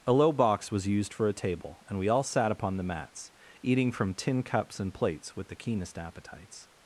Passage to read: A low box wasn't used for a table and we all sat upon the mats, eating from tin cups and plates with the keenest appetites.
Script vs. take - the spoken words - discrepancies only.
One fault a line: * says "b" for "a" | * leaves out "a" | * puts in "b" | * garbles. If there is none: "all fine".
* says "was" for "wasn't"